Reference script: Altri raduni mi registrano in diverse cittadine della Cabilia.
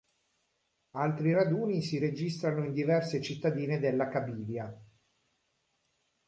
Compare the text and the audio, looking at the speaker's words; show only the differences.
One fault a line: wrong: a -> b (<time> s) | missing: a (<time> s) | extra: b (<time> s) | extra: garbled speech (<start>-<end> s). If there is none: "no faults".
wrong: mi -> si (1.8 s)